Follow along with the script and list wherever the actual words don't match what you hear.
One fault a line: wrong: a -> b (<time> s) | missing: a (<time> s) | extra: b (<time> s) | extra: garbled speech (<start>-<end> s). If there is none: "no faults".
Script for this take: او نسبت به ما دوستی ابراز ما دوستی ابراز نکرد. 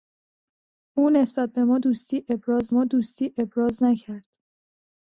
no faults